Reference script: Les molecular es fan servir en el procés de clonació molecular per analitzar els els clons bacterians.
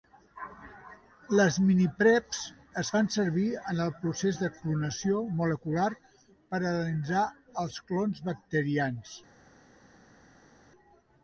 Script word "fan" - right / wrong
right